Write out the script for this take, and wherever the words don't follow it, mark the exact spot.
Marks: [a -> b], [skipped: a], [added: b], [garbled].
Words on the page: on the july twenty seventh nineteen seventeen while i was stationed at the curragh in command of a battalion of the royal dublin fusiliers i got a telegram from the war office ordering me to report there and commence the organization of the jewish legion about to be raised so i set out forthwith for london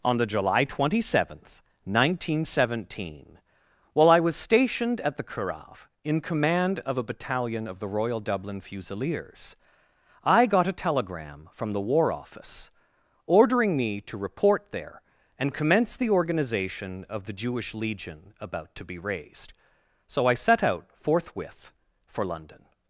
on the july twenty seventh nineteen seventeen while i was stationed at the curragh in command of a battalion of the royal dublin fusiliers i got a telegram from the war office ordering me to report there and commence the organization of the jewish legion about to be raised so i set out forthwith for london